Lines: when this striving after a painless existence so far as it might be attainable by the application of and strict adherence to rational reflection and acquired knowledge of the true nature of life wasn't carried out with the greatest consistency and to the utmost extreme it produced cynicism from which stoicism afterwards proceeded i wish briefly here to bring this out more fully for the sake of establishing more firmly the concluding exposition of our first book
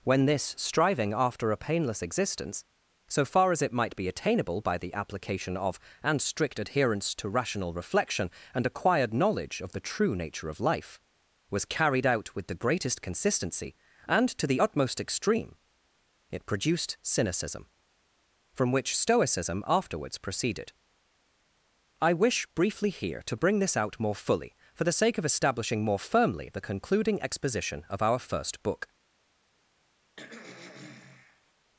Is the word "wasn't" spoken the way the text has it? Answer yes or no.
no